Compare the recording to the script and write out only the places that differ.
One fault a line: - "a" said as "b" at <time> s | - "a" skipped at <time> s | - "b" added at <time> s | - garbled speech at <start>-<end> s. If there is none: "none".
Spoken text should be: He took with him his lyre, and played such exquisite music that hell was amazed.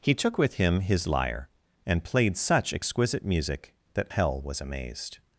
none